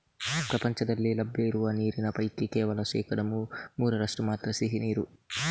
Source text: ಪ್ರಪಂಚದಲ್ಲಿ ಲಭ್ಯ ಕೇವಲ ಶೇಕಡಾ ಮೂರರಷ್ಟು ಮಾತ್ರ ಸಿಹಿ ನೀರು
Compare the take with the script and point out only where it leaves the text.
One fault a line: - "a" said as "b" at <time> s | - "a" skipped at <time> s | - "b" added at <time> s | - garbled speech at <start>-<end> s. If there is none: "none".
- "ಇರುವ ನೀರಿನ ಪೈಕಿ" added at 1.5 s